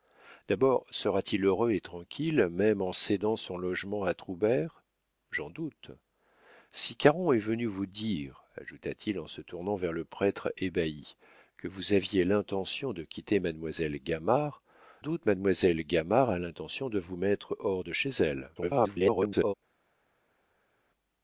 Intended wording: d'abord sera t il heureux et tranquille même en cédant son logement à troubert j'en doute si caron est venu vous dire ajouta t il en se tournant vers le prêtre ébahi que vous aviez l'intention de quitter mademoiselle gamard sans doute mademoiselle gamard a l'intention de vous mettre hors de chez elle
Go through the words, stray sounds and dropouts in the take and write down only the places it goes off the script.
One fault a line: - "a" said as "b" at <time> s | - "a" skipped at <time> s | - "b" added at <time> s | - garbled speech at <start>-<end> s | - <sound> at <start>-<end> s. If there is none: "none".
- "sans" skipped at 14.6 s
- garbled speech at 18.6-19.5 s